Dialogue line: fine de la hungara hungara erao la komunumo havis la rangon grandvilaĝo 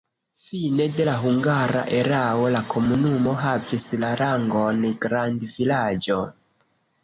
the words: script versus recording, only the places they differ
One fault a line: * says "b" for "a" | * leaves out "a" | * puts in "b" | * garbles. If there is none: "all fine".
* leaves out "hungara"